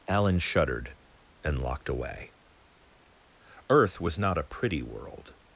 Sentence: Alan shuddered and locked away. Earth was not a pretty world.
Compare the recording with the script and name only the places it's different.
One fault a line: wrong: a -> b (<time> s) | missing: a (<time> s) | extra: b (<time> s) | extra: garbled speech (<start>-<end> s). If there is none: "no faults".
no faults